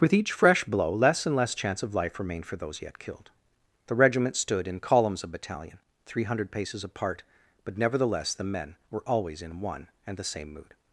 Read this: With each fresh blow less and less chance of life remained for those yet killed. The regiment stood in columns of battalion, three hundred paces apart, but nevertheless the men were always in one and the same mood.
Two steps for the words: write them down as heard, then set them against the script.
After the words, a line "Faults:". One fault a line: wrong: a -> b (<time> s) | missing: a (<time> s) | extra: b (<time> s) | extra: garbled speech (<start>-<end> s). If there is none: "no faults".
With each fresh blow less and less chance of life remained for those yet killed. The regiment stood in columns of battalion, three hundred paces apart, but nevertheless the men were always in one and the same mood.
Faults:
no faults